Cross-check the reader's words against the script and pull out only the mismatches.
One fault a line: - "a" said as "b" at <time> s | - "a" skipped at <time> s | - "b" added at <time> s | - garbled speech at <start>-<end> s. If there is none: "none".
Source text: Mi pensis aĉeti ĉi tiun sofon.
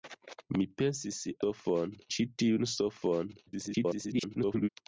- "aĉeti" said as "sofon" at 1.4 s
- garbled speech at 3.5-4.7 s